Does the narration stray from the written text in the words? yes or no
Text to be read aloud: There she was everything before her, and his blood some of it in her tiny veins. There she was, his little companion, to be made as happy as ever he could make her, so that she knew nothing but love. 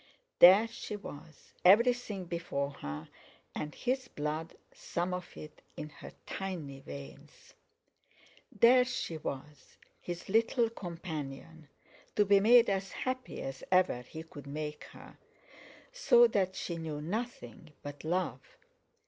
no